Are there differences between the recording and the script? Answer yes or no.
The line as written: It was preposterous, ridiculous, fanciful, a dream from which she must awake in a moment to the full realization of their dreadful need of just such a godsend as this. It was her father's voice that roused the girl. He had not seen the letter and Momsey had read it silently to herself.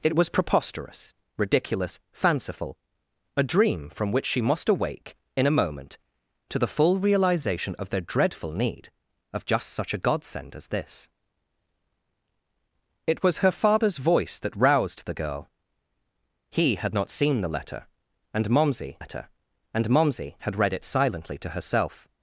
yes